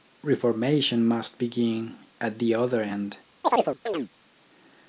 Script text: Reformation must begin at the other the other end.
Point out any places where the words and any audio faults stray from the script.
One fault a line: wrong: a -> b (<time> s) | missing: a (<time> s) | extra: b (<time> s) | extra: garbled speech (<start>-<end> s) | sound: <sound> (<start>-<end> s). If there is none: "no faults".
missing: the other (2.8 s)
sound: chirp (3.4-4.1 s)